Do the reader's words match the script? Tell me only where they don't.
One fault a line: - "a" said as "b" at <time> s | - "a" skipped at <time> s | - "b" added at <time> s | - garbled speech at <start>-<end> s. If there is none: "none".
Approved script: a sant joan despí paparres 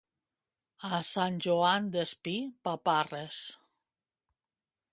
none